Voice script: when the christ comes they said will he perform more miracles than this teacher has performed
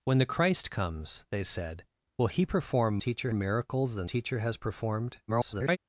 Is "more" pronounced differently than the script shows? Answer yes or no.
yes